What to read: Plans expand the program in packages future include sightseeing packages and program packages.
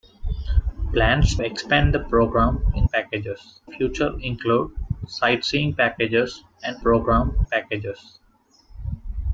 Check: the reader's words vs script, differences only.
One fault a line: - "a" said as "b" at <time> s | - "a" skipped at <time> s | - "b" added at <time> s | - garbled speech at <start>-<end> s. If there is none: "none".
none